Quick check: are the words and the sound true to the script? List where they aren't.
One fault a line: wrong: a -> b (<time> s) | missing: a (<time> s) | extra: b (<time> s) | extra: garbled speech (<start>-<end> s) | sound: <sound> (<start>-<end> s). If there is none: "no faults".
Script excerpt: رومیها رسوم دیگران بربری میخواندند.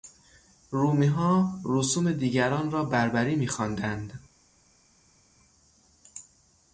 extra: را (2.7 s)